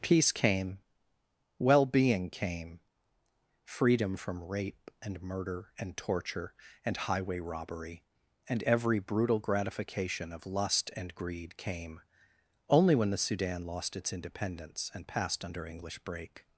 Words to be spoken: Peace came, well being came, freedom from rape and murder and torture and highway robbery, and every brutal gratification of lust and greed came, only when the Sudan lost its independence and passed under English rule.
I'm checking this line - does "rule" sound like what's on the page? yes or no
no